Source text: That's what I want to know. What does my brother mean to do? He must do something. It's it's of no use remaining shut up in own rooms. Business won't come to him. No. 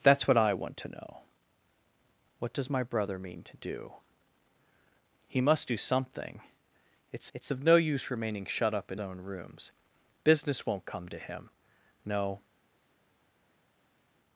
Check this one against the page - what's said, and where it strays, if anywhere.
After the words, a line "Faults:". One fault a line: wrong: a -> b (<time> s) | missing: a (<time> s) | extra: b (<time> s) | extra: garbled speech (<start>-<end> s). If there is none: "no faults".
That's what I want to know. What does my brother mean to do? He must do something. It's it's of no use remaining shut up in own rooms. Business won't come to him. No.
Faults:
no faults